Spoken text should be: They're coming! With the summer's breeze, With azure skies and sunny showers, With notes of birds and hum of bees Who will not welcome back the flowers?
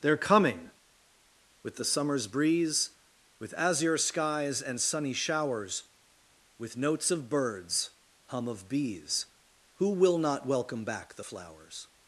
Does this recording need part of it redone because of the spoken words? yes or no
yes